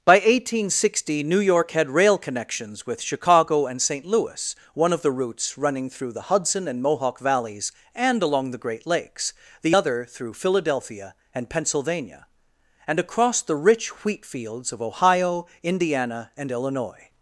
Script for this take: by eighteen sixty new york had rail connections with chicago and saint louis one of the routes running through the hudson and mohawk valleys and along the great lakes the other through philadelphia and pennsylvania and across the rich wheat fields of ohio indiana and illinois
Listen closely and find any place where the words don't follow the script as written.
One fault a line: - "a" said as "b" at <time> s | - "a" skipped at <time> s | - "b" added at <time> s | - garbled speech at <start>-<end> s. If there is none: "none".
none